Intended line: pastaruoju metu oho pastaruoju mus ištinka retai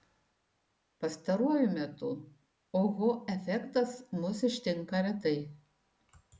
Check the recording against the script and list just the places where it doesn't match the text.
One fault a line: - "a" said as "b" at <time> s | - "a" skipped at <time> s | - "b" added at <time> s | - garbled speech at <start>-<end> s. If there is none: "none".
- "pastaruoju" said as "efektas" at 3.4 s